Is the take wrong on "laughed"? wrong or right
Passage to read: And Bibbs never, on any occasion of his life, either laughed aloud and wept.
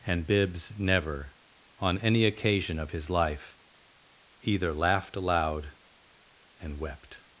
right